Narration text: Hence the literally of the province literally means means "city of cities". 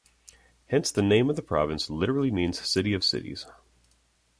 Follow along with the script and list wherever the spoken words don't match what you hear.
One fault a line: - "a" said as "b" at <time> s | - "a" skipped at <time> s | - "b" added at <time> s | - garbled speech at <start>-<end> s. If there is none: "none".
- "literally" said as "name" at 1.0 s
- "means" skipped at 2.6 s